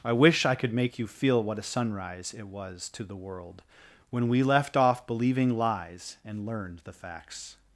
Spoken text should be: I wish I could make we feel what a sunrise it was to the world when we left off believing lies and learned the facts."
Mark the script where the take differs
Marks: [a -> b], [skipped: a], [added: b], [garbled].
I wish I could make [we -> you] feel what a sunrise it was to the world when we left off believing lies and learned the facts."